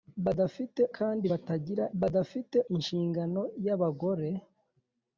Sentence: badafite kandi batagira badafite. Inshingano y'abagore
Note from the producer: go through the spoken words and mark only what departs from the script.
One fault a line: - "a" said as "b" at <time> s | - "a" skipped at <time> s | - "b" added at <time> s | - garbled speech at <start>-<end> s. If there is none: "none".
none